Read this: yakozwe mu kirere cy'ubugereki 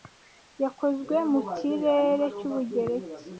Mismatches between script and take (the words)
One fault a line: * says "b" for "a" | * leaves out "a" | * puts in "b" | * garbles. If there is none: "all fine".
all fine